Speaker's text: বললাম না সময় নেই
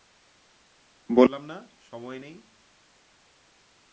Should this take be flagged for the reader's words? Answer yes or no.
no